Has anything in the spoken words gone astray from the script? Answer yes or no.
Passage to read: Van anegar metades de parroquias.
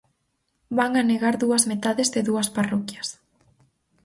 yes